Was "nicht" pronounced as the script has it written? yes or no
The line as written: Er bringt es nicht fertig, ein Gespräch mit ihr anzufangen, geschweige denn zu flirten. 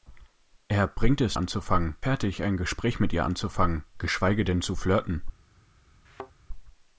no